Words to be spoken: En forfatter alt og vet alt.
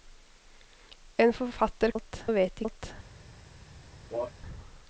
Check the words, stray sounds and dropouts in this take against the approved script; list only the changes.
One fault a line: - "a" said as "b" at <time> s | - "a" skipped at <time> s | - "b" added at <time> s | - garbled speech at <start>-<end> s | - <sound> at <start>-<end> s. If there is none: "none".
- cough at 4.1-4.3 s